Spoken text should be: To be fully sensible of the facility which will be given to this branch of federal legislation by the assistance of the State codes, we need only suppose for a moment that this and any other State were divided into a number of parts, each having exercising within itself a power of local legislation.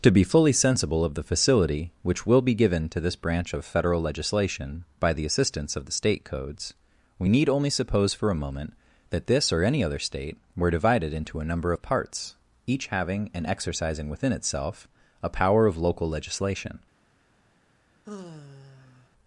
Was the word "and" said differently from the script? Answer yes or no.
yes